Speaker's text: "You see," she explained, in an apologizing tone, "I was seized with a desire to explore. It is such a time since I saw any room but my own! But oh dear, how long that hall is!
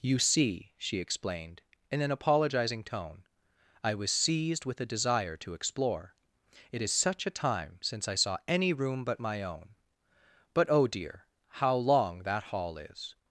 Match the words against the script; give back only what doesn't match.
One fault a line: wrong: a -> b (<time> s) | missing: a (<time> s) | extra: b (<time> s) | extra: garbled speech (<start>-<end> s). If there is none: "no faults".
no faults